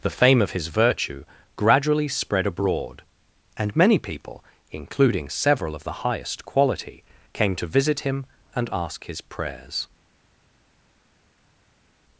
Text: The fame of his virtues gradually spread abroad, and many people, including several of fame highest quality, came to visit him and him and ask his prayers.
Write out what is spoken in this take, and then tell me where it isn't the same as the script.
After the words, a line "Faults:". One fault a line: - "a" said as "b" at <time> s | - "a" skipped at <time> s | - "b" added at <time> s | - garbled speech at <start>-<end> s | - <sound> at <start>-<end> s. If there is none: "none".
The fame of his virtue gradually spread abroad, and many people, including several of the highest quality, came to visit him and ask his prayers.
Faults:
- "virtues" said as "virtue" at 0.7 s
- "fame" said as "the" at 5.8 s
- "him and" skipped at 8.7 s